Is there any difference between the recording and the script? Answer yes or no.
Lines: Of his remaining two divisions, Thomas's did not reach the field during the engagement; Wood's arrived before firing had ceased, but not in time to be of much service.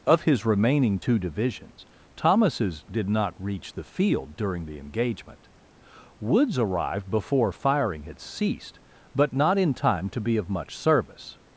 no